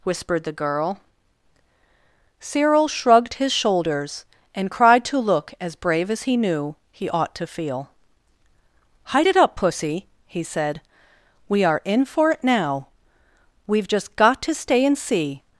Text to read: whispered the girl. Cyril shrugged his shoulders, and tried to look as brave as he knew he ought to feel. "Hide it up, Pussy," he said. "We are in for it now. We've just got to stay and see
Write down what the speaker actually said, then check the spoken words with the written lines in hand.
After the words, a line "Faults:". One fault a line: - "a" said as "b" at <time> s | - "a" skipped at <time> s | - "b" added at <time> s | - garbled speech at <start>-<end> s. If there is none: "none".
whispered the girl. Cyril shrugged his shoulders, and cried to look as brave as he knew he ought to feel. "Hide it up, Pussy," he said. "We are in for it now. We've just got to stay and see
Faults:
- "tried" said as "cried" at 4.7 s